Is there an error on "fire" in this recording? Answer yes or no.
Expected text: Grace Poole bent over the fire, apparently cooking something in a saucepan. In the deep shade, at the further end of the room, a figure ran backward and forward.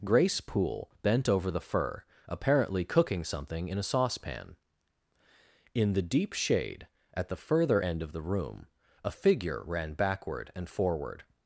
yes